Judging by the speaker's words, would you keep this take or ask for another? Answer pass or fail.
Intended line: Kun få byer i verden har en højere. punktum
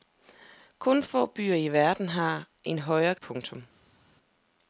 pass